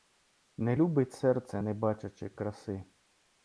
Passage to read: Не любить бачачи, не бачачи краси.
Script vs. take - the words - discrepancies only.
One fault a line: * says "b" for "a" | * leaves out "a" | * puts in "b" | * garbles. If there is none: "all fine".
* says "серце" for "бачачи"